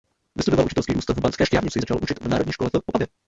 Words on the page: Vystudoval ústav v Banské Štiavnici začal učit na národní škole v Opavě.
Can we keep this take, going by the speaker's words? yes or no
no